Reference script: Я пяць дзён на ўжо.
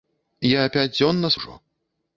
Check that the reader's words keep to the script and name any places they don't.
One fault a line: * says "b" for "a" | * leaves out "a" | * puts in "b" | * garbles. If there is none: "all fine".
all fine